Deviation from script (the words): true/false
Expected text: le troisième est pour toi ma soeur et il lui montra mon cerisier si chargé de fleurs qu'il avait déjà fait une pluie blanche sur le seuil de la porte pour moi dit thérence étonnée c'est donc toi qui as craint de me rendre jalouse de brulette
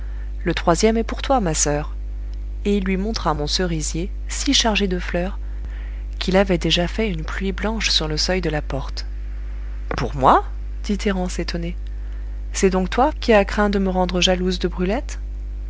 false